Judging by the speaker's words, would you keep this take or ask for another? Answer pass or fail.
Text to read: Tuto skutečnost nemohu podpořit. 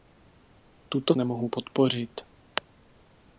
fail